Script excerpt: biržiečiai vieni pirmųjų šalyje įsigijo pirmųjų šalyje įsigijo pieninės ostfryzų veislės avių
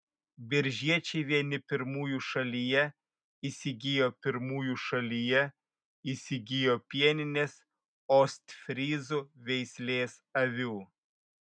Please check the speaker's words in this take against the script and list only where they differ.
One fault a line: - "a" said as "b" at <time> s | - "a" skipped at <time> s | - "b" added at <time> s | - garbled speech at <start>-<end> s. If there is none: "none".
none